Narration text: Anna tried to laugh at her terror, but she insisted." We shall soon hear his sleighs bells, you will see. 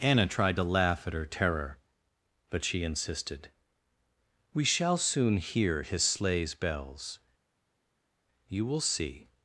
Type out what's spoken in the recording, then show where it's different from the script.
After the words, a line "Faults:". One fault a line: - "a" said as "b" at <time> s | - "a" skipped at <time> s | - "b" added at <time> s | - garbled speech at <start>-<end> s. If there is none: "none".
Anna tried to laugh at her terror, but she insisted." We shall soon hear his sleighs bells, you will see.
Faults:
none